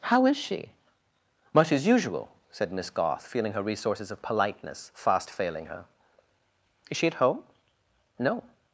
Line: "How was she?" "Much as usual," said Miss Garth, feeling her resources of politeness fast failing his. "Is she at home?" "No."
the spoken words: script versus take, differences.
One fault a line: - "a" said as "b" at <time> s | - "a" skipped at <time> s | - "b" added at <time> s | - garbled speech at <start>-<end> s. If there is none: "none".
- "was" said as "is" at 0.2 s
- "his" said as "her" at 5.7 s